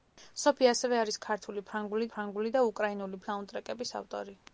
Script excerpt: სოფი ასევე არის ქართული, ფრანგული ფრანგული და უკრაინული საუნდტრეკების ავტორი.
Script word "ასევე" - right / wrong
right